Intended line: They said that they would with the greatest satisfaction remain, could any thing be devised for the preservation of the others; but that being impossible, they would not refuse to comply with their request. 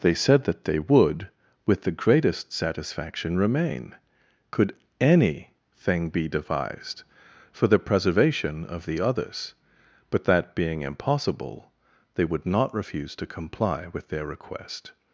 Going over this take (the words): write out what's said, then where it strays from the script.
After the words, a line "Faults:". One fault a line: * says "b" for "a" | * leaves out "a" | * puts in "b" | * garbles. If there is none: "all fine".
They said that they would with the greatest satisfaction remain, could any thing be devised for the preservation of the others; but that being impossible, they would not refuse to comply with their request.
Faults:
all fine